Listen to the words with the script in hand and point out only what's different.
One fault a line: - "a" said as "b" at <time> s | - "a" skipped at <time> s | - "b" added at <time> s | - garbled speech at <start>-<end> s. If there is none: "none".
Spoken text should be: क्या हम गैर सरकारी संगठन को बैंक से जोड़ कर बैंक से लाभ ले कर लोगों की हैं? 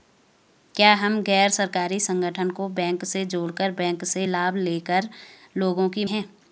none